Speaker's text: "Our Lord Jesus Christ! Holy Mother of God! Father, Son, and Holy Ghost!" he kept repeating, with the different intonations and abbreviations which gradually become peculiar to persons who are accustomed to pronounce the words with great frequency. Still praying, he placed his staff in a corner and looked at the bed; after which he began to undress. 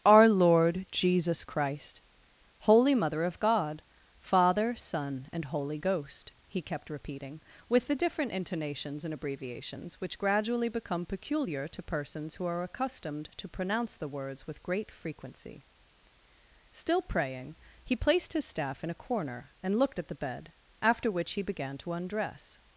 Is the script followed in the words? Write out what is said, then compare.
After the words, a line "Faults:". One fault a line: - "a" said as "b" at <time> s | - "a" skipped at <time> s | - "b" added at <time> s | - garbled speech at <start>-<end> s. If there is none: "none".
"Our Lord Jesus Christ! Holy Mother of God! Father, Son, and Holy Ghost!" he kept repeating, with the different intonations and abbreviations which gradually become peculiar to persons who are accustomed to pronounce the words with great frequency. Still praying, he placed his staff in a corner and looked at the bed; after which he began to undress.
Faults:
none